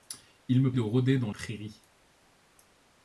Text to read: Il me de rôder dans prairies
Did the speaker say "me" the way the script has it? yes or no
yes